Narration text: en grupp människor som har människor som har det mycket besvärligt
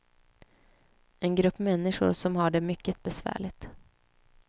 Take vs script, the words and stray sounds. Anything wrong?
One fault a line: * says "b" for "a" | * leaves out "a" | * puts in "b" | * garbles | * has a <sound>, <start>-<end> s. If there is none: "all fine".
* leaves out "människor som har"